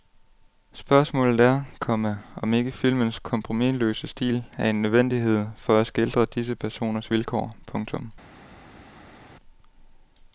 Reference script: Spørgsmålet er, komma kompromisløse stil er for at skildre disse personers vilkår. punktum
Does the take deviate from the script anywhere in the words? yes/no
yes